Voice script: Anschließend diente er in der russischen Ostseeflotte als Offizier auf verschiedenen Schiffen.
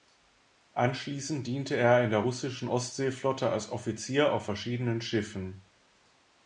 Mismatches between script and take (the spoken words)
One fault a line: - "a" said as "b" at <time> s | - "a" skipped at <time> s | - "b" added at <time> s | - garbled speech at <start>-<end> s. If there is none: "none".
none